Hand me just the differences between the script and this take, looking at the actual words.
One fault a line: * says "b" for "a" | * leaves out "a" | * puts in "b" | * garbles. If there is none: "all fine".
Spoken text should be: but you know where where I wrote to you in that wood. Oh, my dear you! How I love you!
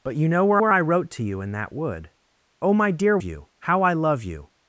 all fine